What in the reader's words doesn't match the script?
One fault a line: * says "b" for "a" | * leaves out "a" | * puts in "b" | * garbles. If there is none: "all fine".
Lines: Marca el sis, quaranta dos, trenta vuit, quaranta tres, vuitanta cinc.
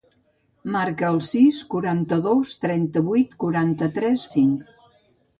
* leaves out "vuitanta"